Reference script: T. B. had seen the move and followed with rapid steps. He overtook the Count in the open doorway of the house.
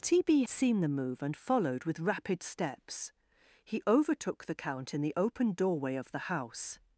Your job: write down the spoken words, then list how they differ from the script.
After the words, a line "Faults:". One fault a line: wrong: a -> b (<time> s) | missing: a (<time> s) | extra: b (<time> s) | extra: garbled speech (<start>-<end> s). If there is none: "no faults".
T. B. seen the move and followed with rapid steps. He overtook the Count in the open doorway of the house.
Faults:
missing: had (0.4 s)